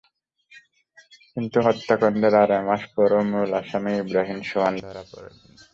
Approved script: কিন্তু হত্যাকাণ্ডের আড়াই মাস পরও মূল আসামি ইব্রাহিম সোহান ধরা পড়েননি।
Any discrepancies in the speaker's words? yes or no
no